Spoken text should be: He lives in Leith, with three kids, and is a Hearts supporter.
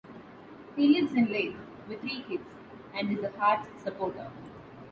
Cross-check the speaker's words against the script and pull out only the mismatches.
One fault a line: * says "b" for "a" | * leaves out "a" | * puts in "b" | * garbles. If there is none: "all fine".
all fine